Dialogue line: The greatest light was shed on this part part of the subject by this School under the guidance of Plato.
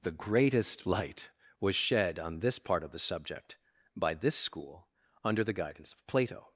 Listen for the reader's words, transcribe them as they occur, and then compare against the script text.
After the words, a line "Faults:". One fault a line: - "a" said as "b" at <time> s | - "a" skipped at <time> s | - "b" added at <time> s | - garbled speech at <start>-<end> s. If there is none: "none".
The greatest light was shed on this part of the subject by this School under the guidance of Plato.
Faults:
- "part" skipped at 2.8 s